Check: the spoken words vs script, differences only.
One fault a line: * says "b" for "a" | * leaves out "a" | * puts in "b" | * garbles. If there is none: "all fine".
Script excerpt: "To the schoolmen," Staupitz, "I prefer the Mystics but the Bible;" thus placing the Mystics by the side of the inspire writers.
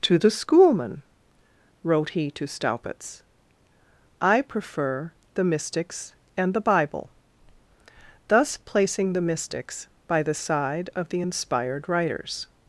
* puts in "wrote he to"
* says "and" for "but"
* says "inspired" for "inspire"